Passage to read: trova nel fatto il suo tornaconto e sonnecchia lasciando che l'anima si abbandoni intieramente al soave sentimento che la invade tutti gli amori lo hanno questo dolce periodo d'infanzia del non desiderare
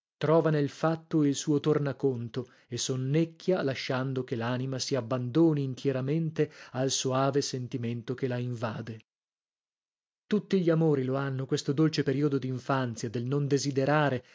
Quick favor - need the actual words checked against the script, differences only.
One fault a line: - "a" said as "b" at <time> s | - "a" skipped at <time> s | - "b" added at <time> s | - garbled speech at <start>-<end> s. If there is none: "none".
none